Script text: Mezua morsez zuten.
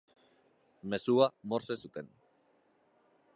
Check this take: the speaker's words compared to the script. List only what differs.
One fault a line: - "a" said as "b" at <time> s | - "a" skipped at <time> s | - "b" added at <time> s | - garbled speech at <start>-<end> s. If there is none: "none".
none